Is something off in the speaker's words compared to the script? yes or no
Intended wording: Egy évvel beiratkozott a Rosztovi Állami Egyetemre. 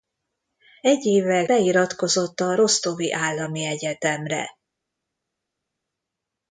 no